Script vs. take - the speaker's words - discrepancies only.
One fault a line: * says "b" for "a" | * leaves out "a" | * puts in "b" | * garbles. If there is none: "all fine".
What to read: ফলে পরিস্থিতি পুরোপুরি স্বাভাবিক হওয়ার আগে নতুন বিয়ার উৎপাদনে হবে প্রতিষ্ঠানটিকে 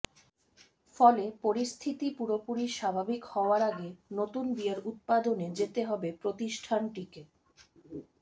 * puts in "যেতে"